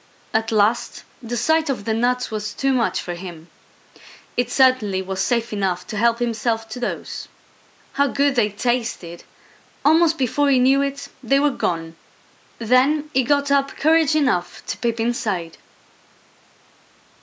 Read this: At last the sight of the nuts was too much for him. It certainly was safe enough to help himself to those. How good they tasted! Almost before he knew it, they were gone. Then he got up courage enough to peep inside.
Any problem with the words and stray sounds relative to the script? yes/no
no